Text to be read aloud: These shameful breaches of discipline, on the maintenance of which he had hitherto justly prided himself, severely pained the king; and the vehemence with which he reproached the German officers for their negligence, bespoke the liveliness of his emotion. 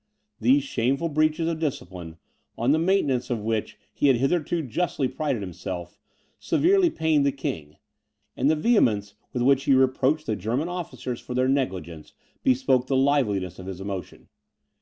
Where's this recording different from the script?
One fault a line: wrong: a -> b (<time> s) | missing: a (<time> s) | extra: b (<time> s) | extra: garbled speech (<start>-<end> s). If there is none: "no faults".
no faults